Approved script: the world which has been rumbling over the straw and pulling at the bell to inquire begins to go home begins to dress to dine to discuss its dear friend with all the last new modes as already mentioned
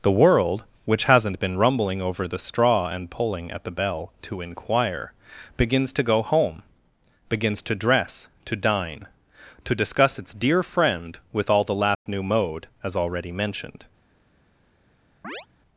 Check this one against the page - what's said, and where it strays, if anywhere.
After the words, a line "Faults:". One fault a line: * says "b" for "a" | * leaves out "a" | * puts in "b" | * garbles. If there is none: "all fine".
the world which hasn't been rumbling over the straw and pulling at the bell to inquire begins to go home begins to dress to dine to discuss its dear friend with all the last new mode as already mentioned
Faults:
* says "hasn't" for "has"
* says "mode" for "modes"